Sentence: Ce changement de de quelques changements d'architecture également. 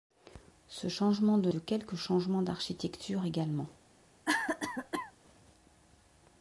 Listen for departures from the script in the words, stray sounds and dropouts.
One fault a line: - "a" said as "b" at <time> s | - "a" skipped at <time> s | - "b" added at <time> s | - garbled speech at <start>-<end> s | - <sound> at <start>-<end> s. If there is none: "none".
- cough at 4.2-5.1 s